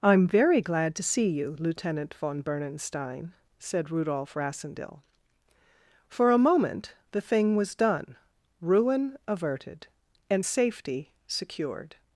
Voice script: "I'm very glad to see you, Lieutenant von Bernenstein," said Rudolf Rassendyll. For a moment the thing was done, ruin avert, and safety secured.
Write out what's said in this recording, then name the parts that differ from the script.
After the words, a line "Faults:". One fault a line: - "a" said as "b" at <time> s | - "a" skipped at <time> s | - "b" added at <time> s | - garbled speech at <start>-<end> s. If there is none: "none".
"I'm very glad to see you, Lieutenant von Bernenstein," said Rudolf Rassendyll. For a moment the thing was done, ruin averted, and safety secured.
Faults:
- "avert" said as "averted" at 9.3 s